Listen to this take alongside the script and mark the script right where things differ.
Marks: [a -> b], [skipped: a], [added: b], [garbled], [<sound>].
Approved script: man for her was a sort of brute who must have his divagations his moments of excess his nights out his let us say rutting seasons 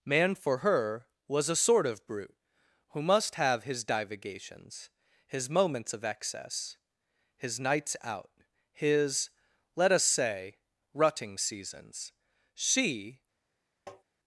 man for her was a sort of brute who must have his divagations his moments of excess his nights out his let us say rutting seasons [added: she] [tap]